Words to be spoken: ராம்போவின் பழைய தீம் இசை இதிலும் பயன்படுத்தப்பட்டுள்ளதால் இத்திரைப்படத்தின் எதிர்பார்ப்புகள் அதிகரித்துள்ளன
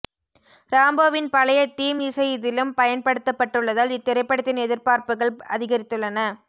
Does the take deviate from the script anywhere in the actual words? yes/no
no